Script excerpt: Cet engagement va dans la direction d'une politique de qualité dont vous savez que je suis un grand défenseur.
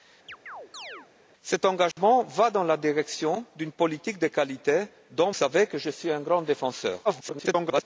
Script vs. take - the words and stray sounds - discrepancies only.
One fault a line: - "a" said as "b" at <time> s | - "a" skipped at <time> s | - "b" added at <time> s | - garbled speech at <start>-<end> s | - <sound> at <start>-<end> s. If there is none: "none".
- chirp at 0.3-1.1 s
- dropout at 1.9-2.0 s
- "vous" skipped at 5.3 s
- garbled speech at 7.0-7.8 s